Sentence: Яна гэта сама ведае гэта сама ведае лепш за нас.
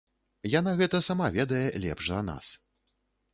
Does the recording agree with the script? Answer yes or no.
no